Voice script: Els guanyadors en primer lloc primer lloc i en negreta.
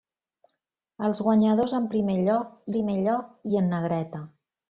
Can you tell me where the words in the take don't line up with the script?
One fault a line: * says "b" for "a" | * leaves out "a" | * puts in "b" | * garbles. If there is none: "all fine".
all fine